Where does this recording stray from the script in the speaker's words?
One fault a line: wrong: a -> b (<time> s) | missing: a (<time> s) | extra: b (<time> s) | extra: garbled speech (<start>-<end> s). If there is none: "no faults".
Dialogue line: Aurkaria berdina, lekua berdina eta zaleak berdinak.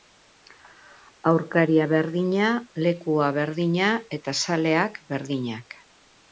no faults